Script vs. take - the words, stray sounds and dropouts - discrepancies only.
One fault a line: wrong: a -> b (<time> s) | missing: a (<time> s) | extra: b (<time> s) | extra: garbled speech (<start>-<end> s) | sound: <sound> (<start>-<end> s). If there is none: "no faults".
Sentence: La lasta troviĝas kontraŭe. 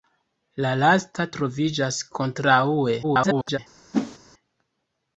extra: garbled speech (3.0-3.6 s)
sound: whoosh (3.9-4.2 s)